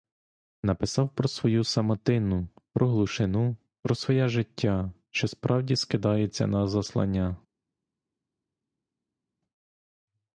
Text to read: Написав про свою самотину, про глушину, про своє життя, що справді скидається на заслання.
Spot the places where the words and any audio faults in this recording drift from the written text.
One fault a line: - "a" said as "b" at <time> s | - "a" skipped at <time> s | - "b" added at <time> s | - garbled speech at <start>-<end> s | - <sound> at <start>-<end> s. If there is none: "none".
none